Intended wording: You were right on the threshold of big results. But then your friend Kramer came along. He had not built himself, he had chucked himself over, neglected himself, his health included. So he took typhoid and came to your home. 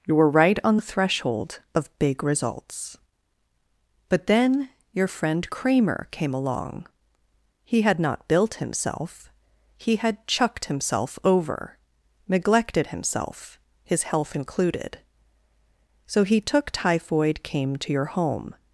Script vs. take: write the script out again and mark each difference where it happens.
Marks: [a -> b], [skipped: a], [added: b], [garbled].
You were right on the threshold of big results. But then your friend Kramer came along. He had not built himself, he had chucked himself over, neglected himself, his health included. So he took typhoid [skipped: and] came to your home.